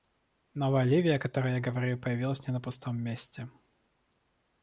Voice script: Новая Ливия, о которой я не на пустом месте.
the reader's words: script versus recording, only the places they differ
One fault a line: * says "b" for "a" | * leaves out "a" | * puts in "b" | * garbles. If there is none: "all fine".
* puts in "говорю появилась"